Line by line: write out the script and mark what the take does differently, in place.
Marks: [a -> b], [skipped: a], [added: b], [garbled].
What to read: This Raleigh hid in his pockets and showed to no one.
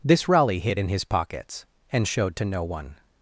This Raleigh hid in his pockets and showed to no one.